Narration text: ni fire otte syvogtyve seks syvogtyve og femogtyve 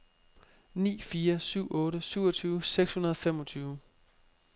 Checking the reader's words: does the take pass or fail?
fail